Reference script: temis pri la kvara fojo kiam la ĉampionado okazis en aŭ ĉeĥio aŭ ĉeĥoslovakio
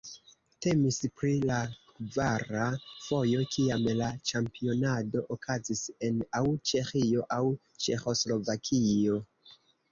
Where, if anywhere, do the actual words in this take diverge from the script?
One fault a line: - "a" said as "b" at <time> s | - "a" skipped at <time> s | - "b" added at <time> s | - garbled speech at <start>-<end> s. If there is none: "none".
none